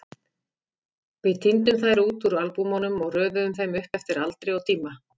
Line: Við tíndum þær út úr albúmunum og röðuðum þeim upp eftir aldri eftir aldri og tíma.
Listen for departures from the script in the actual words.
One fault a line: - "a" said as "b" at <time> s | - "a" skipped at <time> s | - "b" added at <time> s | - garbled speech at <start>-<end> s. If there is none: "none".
- "eftir aldri" skipped at 4.6 s